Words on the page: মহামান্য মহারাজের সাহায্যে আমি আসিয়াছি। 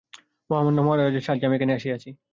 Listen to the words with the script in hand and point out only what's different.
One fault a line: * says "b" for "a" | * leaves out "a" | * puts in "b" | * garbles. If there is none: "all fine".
* puts in "এখানে"